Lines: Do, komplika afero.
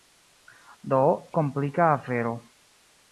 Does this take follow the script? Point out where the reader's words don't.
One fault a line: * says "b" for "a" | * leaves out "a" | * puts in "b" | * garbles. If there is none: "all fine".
all fine